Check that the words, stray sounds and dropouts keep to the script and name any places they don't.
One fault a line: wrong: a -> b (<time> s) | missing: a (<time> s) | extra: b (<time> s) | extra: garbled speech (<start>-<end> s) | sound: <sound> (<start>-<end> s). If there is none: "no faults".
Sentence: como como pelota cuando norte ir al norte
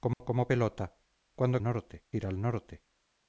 sound: dropout (0.1-0.2 s)